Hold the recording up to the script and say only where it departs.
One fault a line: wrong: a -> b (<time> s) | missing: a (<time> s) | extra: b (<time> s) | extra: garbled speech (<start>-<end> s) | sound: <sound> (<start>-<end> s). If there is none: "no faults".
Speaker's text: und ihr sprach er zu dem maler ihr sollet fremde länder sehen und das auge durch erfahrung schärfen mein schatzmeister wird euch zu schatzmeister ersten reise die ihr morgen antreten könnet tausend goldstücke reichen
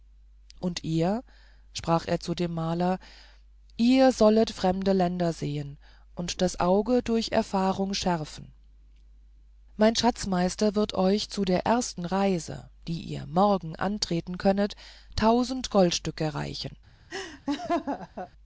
wrong: schatzmeister -> der (11.4 s)
sound: laugh (17.1-18.3 s)